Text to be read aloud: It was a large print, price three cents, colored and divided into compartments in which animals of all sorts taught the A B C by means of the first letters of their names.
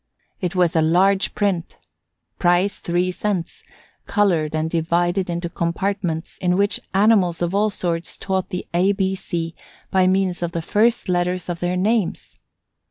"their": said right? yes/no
yes